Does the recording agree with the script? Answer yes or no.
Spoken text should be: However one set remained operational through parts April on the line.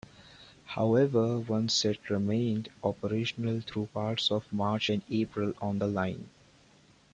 no